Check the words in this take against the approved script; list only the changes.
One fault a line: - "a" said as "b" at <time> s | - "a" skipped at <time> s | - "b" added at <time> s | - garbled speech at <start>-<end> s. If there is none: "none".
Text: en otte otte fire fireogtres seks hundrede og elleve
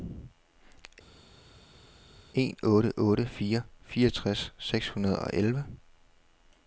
none